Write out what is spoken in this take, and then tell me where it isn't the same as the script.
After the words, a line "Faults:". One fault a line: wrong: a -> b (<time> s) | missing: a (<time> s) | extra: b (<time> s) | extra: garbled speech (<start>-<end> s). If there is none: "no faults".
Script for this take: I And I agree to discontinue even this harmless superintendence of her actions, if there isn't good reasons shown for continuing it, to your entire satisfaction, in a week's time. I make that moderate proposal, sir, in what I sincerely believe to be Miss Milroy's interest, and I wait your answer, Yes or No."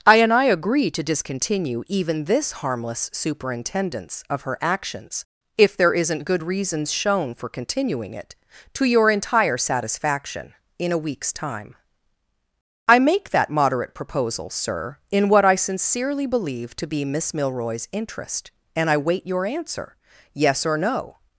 I And I agree to discontinue even this harmless superintendence of her actions, if there isn't good reasons shown for continuing it, to your entire satisfaction, in a week's time. I make that moderate proposal, sir, in what I sincerely believe to be Miss Milroy's interest, and I wait your answer, Yes or No."
Faults:
no faults